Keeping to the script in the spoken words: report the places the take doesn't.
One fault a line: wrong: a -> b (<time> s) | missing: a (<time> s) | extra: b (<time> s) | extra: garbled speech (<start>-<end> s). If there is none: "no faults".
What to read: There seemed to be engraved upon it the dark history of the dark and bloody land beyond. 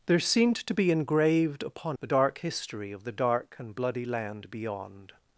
missing: it (2.0 s)